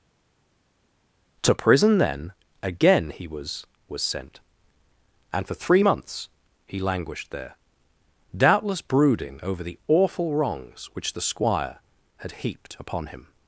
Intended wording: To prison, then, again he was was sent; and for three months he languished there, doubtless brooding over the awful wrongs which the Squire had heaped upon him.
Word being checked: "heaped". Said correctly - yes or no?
yes